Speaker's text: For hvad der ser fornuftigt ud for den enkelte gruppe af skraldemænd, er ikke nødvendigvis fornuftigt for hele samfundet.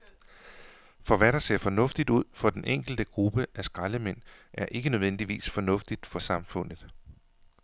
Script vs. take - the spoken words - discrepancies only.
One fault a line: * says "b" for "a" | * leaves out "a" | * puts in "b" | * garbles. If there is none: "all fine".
* leaves out "hele"